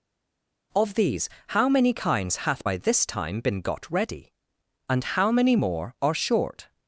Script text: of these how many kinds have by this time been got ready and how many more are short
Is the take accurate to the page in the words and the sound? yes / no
no